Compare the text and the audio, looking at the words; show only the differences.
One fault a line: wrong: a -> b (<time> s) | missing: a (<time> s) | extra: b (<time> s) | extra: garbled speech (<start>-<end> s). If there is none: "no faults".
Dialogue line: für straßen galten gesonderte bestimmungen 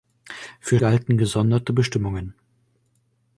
missing: straßen (0.8 s)